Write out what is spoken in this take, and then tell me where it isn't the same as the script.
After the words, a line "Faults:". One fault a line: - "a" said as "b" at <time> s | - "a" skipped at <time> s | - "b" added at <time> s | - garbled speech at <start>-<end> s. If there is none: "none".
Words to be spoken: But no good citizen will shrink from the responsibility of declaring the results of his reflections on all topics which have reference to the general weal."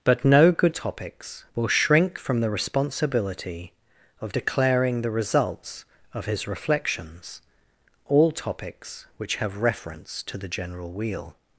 But no good topics will shrink from the responsibility of declaring the results of his reflections all topics which have reference to the general weal."
Faults:
- "citizen" said as "topics" at 0.7 s
- "on" skipped at 7.4 s